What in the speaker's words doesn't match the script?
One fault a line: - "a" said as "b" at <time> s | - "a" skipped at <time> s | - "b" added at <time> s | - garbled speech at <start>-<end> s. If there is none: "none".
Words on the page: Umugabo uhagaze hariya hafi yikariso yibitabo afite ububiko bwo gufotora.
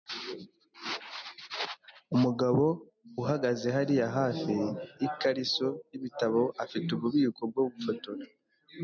none